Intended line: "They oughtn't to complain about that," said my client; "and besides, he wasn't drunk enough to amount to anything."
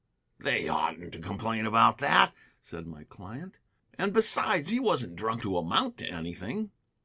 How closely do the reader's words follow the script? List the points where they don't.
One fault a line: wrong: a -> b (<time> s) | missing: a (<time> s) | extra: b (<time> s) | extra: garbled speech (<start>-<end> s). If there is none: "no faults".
missing: enough (5.4 s)